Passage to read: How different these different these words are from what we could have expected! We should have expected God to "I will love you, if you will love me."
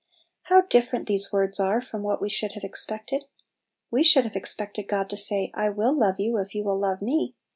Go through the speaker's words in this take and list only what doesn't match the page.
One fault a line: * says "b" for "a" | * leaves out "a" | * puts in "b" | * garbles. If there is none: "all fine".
* leaves out "different these"
* says "should" for "could"
* puts in "say"